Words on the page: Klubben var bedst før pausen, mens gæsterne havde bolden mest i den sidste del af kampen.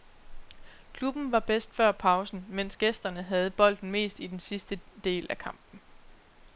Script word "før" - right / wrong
right